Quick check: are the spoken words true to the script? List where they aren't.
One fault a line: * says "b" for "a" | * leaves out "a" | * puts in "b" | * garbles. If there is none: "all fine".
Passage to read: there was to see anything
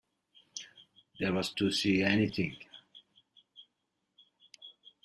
all fine